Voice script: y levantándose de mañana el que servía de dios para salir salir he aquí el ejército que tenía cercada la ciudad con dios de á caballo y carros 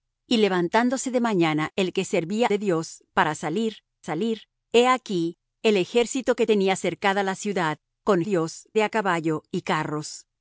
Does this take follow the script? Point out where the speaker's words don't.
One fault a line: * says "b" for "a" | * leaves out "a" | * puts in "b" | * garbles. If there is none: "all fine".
all fine